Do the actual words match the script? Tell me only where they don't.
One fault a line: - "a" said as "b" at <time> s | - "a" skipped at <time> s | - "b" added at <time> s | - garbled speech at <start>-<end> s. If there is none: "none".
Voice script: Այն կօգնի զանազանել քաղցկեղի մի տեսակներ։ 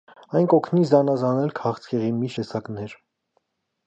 none